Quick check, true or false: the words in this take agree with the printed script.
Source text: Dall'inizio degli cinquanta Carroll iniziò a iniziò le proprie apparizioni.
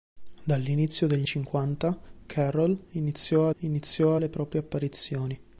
true